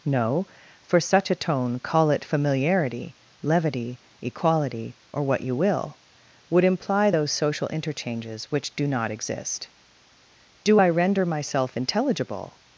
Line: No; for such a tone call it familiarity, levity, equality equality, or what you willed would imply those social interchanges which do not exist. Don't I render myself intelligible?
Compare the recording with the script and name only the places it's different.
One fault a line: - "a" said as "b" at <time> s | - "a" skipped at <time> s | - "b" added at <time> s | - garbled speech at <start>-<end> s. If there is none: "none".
- "equality" skipped at 5.0 s
- "willed" said as "will" at 5.5 s
- "Don't" said as "Do" at 10.6 s